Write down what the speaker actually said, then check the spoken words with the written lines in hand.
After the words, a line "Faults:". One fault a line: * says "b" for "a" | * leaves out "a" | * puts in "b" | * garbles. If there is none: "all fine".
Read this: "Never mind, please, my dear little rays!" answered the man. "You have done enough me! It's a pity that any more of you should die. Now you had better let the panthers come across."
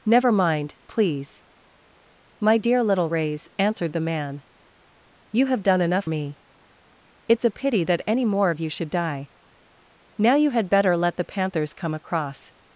"Never mind, please, my dear little rays!" answered the man. "You have done enough me! It's a pity that any more of you should die. Now you had better let the panthers come across."
Faults:
all fine